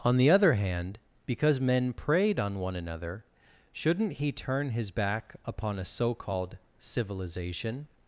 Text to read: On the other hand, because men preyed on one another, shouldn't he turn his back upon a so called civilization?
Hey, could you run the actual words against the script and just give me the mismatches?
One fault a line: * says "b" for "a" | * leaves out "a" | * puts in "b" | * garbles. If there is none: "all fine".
all fine